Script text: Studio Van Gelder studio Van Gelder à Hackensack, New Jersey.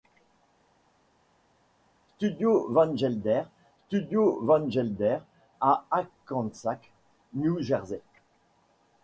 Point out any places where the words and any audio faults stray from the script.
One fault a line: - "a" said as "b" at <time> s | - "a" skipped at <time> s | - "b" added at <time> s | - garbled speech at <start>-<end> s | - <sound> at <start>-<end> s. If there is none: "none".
none